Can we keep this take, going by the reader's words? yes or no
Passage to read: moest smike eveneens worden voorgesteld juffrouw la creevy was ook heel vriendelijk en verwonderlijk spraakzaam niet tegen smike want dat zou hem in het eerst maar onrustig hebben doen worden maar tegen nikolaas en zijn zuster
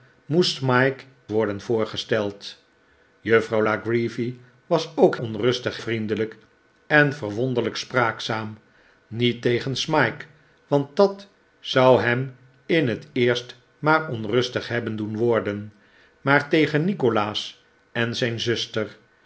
no